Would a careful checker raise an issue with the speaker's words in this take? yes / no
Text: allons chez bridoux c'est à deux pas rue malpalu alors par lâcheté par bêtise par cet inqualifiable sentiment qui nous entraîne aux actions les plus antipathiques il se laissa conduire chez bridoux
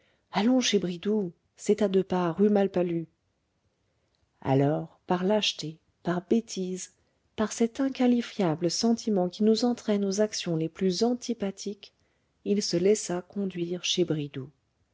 no